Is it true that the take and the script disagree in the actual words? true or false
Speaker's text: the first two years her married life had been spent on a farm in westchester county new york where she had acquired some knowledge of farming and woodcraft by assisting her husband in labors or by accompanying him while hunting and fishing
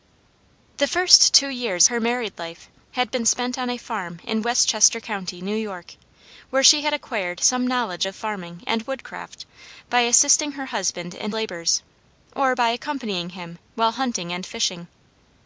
false